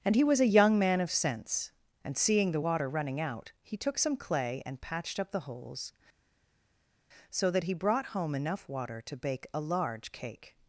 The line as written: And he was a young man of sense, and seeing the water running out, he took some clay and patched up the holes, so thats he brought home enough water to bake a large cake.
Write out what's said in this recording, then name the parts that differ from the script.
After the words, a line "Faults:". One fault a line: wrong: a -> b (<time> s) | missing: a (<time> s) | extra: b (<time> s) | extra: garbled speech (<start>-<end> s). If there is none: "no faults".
And he was a young man of sense, and seeing the water running out, he took some clay and patched up the holes, so that he brought home enough water to bake a large cake.
Faults:
wrong: thats -> that (7.5 s)